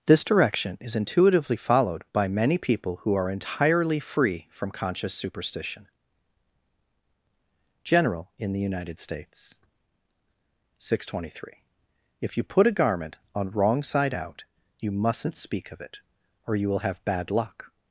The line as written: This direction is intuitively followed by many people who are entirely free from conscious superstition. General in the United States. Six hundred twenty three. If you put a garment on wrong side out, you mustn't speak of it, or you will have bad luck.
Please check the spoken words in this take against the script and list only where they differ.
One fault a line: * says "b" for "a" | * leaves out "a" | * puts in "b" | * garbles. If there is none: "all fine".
all fine